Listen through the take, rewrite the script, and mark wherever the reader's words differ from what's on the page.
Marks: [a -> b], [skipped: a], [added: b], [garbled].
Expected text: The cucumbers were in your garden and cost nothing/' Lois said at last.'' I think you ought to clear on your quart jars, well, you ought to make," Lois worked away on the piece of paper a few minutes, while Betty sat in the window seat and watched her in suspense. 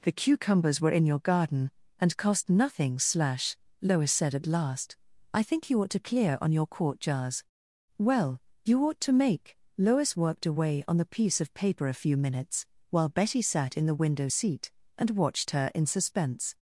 The cucumbers were in your garden and cost nothing/' [added: slash] Lois said at last.'' I think you ought to clear on your quart jars, well, you ought to make," Lois worked away on the piece of paper a few minutes, while Betty sat in the window seat and watched her in suspense.